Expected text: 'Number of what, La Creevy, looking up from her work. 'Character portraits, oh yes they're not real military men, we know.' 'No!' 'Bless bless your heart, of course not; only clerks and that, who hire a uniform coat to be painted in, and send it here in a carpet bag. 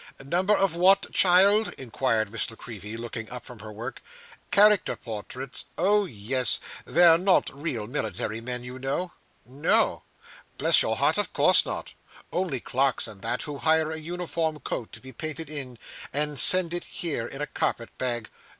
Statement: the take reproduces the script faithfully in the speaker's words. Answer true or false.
false